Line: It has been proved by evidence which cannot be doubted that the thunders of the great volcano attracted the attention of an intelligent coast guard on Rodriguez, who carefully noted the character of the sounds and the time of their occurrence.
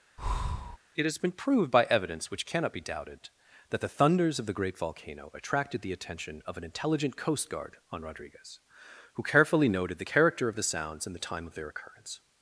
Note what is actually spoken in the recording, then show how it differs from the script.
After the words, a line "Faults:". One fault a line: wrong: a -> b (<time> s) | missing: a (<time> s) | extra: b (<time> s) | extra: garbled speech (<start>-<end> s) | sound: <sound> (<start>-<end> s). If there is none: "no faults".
It has been proved by evidence which cannot be doubted that the thunders of the great volcano attracted the attention of an intelligent coast guard on Rodriguez, who carefully noted the character of the sounds and the time of their occurrence.
Faults:
sound: breath (0.2-0.8 s)